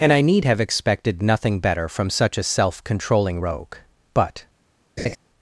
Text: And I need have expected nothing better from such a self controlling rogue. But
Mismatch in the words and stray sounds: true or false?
true